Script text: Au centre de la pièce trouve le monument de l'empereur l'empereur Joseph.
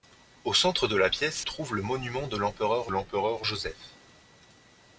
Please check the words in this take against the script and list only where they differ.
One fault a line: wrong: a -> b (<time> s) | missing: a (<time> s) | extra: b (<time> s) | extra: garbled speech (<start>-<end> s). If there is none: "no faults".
no faults